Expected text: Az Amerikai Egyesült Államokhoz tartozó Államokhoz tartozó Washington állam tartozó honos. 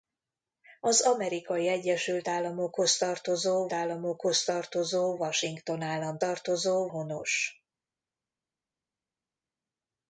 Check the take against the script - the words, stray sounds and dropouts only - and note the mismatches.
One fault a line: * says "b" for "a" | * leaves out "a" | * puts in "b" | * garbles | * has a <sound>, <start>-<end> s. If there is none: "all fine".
all fine